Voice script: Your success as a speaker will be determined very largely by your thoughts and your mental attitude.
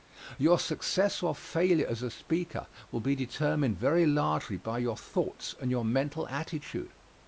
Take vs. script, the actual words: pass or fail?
fail